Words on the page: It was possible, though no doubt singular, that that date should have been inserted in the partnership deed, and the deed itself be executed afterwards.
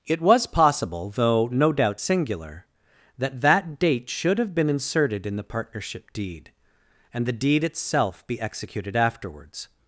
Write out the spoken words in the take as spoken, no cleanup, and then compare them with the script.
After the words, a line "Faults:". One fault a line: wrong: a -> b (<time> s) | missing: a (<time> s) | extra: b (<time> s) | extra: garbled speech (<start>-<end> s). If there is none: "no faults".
It was possible, though no doubt singular, that that date should have been inserted in the partnership deed, and the deed itself be executed afterwards.
Faults:
no faults